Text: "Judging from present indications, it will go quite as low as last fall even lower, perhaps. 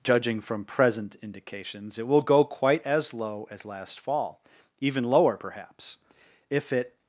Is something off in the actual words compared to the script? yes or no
yes